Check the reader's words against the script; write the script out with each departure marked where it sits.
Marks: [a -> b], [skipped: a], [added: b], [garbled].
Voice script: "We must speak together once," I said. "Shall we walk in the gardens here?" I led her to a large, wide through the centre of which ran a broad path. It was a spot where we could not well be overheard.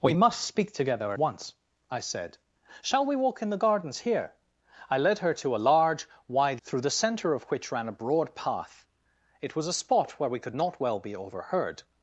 "We must speak together once," I said. "Shall we walk in the gardens here?" I led her to a large, wide through the centre of which ran a broad path. It was a spot where we could not well be overheard.